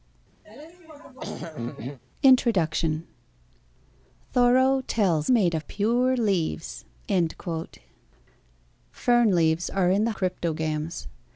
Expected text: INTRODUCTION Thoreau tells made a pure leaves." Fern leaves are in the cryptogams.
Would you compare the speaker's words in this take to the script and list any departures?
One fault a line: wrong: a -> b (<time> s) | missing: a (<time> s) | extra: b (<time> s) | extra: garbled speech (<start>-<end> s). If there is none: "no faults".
no faults